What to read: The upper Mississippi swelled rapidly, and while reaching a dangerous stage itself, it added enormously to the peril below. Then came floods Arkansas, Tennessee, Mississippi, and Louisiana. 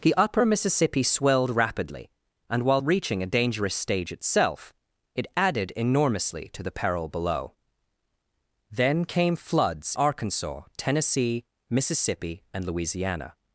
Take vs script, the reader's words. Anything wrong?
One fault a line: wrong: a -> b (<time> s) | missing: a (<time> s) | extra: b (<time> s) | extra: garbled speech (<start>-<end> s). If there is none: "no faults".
no faults